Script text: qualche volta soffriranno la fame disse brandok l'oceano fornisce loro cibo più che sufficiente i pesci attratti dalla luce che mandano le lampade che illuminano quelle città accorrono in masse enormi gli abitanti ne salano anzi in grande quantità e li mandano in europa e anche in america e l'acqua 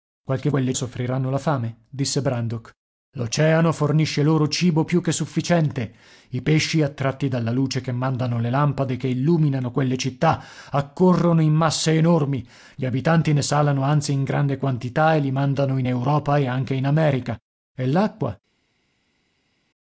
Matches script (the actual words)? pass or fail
fail